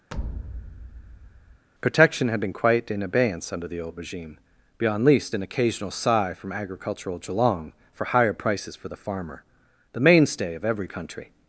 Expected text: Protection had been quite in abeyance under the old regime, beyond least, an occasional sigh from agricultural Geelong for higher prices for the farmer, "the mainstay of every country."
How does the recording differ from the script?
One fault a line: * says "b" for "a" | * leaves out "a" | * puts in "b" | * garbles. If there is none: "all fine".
all fine